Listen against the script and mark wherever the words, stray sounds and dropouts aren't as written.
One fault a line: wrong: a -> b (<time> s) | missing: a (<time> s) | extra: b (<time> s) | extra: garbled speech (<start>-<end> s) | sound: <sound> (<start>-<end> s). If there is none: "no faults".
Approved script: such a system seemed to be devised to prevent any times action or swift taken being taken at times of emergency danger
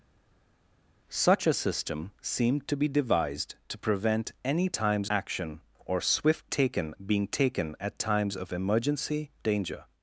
no faults